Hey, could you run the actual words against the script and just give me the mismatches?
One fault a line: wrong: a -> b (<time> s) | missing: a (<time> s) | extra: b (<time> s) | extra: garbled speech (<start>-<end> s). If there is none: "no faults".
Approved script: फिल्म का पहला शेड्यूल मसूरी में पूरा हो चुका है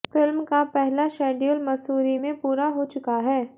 no faults